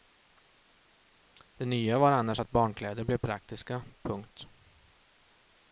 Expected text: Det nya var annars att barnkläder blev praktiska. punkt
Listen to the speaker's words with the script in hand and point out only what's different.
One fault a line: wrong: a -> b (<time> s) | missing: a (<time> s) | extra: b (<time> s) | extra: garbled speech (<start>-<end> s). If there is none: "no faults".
no faults